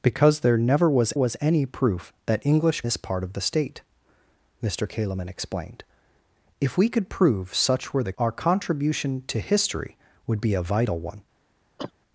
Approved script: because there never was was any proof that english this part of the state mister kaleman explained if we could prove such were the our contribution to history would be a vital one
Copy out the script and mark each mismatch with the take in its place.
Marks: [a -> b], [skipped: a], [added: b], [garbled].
because there never was was any proof that english this part of the state mister kaleman explained if we could prove such were the our contribution to history would be a vital one